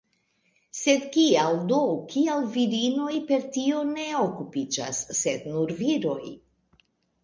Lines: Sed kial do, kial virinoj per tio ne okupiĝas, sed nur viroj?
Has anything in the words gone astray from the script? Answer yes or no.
no